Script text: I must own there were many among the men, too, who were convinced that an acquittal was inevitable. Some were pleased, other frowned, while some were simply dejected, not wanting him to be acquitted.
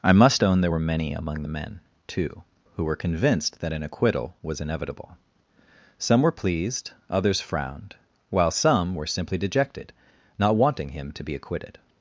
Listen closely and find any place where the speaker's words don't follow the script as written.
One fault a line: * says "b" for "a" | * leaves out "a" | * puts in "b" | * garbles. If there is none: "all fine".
* says "others" for "other"